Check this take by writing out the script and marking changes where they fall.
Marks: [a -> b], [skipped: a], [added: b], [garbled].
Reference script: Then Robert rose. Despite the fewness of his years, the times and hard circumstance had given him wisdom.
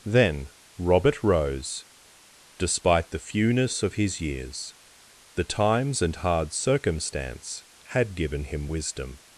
Then Robert rose. Despite the fewness of his years, the times and hard circumstance had given him wisdom.